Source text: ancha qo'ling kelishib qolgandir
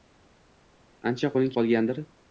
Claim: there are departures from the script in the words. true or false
true